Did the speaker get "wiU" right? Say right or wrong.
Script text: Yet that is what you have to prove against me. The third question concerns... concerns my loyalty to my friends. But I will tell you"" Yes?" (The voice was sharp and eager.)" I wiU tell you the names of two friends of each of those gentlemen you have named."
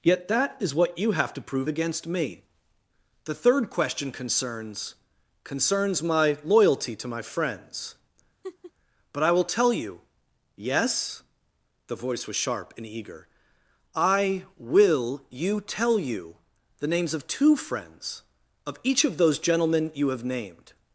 wrong